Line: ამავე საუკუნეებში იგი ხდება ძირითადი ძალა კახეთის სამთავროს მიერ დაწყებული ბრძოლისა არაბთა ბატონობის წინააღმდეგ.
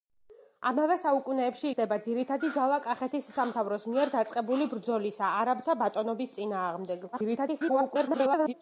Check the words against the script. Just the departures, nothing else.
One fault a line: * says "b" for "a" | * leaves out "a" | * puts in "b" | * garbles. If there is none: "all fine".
* leaves out "იგი"
* garbles